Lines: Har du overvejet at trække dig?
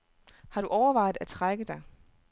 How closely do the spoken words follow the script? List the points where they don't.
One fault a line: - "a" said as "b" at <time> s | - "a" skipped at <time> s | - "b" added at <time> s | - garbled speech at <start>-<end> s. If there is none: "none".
none